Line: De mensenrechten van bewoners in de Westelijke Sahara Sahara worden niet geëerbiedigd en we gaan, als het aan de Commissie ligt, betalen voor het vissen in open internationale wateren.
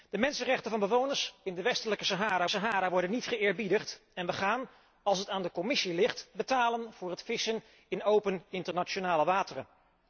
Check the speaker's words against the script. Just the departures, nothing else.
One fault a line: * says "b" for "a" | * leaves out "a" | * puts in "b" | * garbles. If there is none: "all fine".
all fine